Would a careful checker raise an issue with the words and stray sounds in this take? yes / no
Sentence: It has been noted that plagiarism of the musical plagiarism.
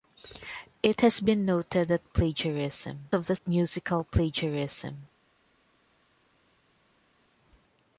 no